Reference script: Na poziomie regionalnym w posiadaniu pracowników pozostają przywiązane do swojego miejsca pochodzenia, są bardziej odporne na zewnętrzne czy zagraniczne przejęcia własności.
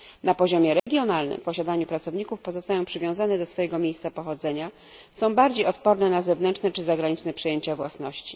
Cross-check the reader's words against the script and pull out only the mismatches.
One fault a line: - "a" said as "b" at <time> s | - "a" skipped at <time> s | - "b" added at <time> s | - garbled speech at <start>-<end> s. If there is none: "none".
none